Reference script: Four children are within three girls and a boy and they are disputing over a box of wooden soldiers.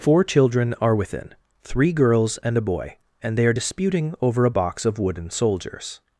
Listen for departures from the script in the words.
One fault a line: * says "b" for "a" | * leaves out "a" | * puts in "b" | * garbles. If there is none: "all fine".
all fine